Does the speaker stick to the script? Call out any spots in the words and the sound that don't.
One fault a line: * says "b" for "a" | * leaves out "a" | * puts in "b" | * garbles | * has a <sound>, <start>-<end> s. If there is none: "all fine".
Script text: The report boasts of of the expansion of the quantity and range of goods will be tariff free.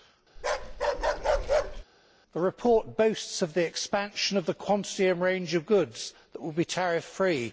* has a bark, 0.4-1.8 s
* leaves out "of"
* puts in "that"